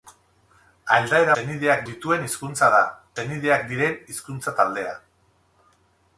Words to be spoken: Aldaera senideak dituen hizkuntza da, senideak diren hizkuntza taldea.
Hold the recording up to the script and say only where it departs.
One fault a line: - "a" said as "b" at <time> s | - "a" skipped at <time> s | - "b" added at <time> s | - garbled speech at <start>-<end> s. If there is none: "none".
none